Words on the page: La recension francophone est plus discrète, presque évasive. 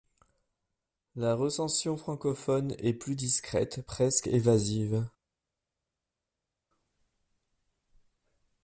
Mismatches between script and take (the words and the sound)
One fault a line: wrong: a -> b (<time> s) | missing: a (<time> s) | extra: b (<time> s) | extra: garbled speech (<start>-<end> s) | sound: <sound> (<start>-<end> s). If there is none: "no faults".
no faults